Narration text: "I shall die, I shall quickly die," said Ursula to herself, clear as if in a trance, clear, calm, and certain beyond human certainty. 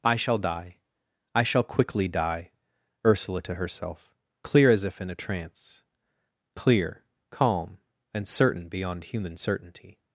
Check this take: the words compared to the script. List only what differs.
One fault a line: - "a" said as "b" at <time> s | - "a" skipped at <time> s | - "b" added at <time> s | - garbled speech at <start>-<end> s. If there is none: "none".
- "said" skipped at 2.5 s